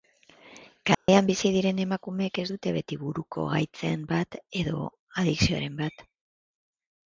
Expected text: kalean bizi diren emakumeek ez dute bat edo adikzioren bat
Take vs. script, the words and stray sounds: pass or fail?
fail